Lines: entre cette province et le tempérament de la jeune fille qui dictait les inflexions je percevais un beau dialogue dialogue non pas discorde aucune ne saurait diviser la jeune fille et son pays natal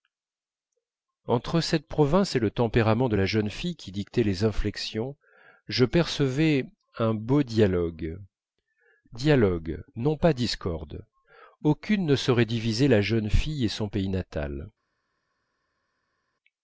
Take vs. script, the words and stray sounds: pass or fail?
pass